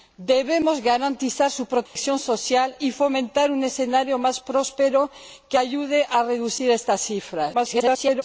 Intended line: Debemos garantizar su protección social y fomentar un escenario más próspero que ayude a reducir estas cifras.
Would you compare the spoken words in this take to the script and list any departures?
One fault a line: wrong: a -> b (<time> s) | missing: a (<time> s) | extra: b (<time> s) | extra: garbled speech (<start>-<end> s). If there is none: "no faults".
extra: garbled speech (7.5-8.2 s)